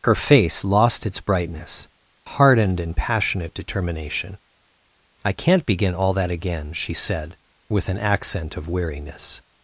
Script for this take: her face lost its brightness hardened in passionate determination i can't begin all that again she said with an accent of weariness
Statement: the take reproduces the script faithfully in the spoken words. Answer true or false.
true